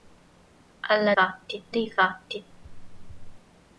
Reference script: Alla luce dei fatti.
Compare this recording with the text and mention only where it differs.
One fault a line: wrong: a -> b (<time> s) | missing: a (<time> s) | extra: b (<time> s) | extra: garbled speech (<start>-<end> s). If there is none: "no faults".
wrong: luce -> fatti (1.1 s)